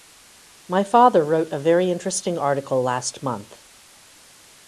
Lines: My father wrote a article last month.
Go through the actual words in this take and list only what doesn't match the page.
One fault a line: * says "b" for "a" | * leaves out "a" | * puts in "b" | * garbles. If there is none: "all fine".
* puts in "very interesting"